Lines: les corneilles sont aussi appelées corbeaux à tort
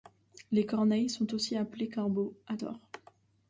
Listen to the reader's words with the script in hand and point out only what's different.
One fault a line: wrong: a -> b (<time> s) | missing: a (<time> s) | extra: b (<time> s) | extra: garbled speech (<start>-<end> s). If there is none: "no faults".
no faults